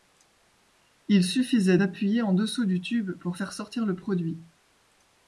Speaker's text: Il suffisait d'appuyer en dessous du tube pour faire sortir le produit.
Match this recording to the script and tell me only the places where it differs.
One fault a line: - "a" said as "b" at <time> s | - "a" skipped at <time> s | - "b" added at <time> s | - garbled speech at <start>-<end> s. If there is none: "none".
none